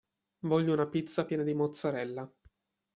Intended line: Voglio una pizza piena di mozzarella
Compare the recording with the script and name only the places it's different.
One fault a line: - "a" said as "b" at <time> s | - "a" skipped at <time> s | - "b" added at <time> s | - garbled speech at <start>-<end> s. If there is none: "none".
none